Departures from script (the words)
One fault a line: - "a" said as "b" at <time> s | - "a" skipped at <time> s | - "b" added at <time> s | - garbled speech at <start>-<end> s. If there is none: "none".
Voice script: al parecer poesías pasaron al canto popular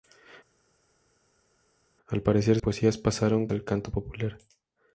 none